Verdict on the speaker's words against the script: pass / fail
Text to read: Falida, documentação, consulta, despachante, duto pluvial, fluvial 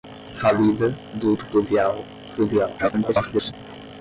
fail